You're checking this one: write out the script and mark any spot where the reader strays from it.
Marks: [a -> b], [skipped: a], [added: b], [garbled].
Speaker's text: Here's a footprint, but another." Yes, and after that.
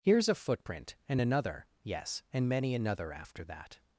Here's a footprint, [but -> and] another." Yes, and [added: many another] after that.